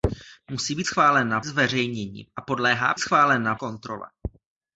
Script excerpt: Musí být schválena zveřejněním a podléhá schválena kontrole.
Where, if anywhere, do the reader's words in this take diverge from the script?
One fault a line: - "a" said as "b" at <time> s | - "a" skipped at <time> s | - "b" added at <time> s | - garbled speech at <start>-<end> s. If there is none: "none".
none